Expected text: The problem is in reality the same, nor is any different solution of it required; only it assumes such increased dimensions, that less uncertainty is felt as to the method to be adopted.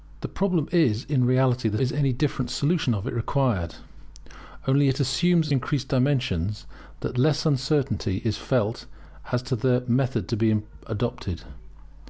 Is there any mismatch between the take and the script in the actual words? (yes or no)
yes